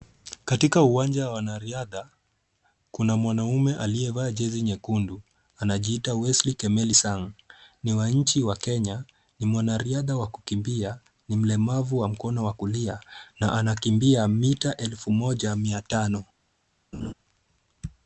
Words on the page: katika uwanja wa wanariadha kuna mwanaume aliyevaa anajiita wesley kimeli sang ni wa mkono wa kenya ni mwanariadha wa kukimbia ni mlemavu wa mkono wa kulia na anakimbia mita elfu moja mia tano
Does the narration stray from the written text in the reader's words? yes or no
yes